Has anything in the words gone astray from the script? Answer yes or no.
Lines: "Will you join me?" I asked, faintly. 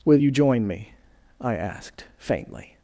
no